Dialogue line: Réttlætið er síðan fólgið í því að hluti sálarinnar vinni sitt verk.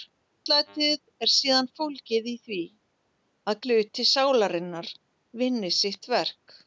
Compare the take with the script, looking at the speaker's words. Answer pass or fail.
pass